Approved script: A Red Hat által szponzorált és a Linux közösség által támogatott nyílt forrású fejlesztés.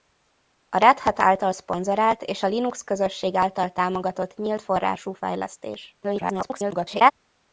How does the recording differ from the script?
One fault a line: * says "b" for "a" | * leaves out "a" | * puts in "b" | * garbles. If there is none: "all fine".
* garbles